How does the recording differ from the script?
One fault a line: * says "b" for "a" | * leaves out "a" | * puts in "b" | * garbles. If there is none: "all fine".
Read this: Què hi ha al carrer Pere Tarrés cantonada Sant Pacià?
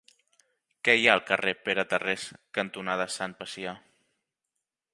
all fine